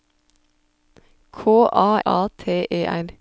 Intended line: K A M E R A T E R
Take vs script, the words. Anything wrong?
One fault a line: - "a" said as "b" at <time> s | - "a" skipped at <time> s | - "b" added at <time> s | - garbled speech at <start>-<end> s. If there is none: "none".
- "M E R" skipped at 2.0 s